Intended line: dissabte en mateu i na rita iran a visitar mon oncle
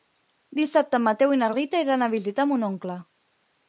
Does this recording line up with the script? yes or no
yes